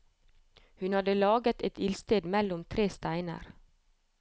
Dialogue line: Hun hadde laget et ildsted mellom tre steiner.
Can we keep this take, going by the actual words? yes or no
yes